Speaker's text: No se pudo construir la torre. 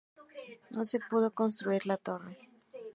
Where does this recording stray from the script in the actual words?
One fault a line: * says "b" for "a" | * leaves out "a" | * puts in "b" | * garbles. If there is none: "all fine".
all fine